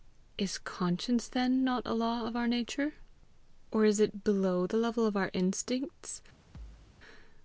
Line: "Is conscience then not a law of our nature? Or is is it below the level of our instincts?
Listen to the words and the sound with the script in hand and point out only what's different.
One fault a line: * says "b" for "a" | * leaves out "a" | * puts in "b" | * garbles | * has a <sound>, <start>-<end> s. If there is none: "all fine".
* leaves out "is"
* has a thud, 6.5-7.0 s